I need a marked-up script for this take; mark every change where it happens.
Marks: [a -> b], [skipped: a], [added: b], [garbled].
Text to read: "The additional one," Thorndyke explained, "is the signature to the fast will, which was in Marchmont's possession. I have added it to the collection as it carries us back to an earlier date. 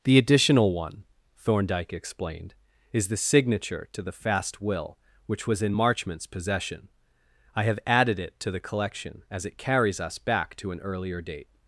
"The additional one," Thorndyke explained, "is the signature to the fast will, which was in Marchmont's possession. I have added it to the collection as it carries us back to an earlier date.